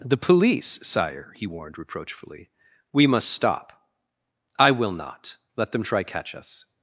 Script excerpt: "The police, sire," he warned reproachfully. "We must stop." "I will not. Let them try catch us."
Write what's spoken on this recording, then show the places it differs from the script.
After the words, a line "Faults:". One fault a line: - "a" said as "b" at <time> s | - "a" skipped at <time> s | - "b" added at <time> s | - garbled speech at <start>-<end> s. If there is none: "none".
"The police, sire," he warned reproachfully. "We must stop." "I will not. Let them try catch us."
Faults:
none